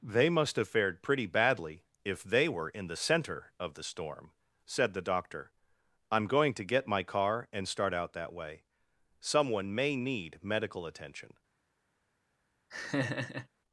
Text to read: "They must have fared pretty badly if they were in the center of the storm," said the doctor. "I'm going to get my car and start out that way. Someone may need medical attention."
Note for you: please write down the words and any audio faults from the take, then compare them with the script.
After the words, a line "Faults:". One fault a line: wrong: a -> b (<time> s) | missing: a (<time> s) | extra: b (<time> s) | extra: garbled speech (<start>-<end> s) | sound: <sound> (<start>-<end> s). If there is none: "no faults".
"They must have fared pretty badly if they were in the center of the storm," said the doctor. "I'm going to get my car and start out that way. Someone may need medical attention."
Faults:
sound: laugh (12.7-13.5 s)